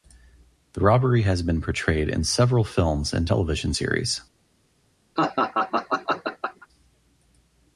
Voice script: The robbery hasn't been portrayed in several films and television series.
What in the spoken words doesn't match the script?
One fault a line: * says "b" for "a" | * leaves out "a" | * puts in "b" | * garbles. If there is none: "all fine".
* says "has" for "hasn't"